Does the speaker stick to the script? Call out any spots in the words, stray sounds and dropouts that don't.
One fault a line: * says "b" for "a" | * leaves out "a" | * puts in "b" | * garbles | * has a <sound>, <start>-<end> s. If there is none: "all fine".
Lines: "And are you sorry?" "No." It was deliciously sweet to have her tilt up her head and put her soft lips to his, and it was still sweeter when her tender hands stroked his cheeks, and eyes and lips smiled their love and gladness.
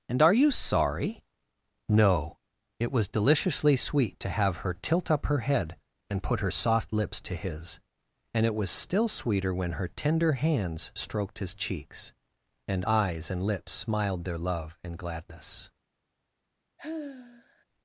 * has a sigh, 16.8-17.7 s